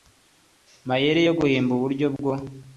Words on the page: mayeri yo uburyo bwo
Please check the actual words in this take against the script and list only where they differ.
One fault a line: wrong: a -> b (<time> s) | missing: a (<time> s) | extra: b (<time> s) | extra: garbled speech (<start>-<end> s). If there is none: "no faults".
extra: guhimba (1.4 s)